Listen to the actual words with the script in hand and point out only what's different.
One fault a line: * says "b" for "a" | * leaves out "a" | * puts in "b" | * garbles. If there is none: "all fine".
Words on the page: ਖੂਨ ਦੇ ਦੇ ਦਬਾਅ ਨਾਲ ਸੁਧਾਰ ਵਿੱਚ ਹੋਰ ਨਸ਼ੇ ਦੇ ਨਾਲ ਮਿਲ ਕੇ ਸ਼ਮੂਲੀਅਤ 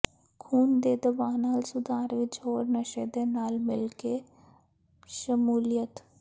* leaves out "ਦੇ"